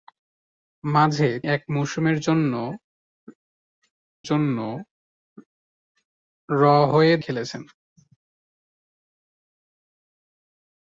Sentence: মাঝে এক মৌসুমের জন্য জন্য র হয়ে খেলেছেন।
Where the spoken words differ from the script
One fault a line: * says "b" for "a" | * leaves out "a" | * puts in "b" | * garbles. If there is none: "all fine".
all fine